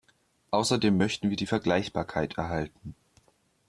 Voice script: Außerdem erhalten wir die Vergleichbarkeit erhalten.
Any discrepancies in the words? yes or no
yes